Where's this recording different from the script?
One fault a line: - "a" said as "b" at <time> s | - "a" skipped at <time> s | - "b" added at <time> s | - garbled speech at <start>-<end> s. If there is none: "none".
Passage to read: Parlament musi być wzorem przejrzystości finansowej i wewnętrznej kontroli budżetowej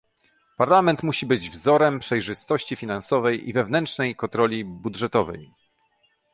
none